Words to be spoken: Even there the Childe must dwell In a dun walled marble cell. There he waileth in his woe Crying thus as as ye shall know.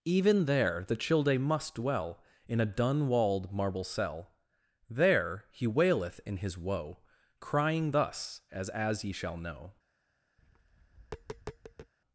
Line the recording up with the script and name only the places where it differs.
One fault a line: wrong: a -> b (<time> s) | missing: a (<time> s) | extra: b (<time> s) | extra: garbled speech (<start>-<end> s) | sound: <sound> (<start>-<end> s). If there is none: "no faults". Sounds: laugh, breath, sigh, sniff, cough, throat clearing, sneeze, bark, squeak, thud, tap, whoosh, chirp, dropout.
sound: tap (10.4-11.9 s)